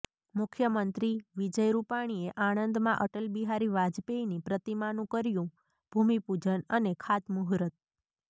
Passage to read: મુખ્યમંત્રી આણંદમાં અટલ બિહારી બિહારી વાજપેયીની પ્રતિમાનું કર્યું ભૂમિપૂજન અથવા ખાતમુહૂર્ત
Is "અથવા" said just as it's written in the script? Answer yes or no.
no